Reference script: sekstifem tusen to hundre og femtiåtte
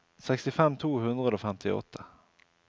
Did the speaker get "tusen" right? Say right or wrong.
wrong